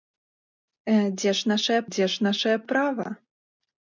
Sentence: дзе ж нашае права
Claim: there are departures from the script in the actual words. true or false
true